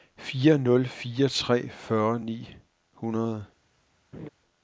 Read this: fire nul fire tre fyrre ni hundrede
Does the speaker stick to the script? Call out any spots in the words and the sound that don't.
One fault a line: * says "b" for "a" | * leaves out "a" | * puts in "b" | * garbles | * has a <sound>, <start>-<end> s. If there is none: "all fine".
* has a laugh, 4.1-4.3 s